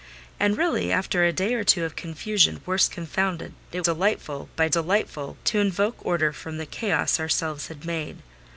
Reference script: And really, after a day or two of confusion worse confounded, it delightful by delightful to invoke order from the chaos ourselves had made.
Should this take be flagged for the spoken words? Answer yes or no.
no